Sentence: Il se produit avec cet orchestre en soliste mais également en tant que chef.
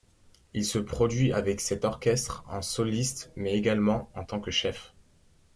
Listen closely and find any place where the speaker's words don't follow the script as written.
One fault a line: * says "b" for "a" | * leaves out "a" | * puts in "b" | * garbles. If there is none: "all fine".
all fine